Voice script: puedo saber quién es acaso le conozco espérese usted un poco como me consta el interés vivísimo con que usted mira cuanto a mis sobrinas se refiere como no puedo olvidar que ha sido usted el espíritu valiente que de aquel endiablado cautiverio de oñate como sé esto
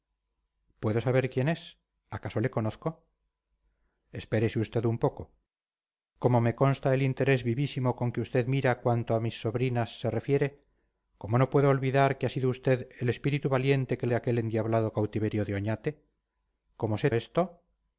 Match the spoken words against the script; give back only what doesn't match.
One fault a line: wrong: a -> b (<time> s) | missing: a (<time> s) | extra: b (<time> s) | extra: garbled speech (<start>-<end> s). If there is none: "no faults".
no faults